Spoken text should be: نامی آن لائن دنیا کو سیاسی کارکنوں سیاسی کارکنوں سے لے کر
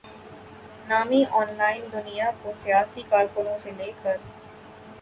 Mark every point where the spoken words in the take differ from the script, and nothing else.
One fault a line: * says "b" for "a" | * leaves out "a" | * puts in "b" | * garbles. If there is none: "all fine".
* leaves out "سیاسی کارکنوں"